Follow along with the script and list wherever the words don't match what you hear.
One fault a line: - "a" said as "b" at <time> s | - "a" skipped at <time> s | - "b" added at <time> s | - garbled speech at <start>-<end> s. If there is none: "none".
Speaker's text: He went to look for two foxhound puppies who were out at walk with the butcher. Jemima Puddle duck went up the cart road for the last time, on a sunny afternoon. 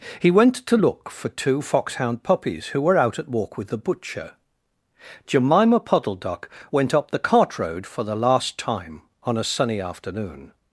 none